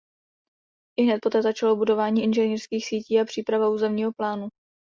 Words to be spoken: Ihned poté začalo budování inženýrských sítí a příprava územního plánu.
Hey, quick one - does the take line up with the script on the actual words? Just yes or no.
yes